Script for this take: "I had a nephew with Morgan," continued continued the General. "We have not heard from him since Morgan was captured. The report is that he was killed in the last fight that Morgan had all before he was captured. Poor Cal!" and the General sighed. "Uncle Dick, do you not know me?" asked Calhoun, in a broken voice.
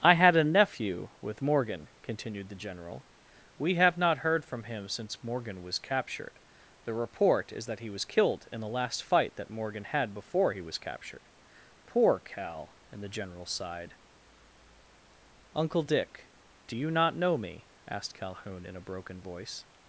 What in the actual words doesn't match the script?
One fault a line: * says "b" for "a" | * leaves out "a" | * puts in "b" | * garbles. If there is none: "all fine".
* leaves out "continued"
* leaves out "all"